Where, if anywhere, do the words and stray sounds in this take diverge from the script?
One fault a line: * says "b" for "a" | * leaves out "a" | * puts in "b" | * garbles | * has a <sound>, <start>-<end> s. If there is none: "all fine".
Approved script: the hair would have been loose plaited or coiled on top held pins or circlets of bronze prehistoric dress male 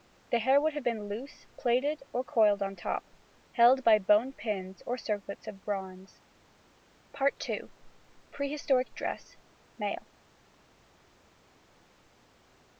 * puts in "by bone"